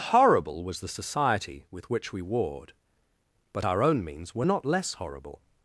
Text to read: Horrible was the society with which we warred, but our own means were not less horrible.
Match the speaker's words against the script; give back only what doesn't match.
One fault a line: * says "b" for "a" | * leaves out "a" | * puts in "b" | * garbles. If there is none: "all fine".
all fine